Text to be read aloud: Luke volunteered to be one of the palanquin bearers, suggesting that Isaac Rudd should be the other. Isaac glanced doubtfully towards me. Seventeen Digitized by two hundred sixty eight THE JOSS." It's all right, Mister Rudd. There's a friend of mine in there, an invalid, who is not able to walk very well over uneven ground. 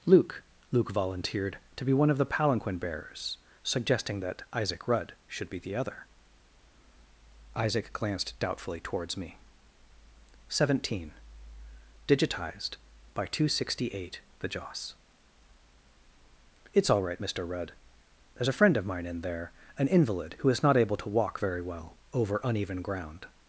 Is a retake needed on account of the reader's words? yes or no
yes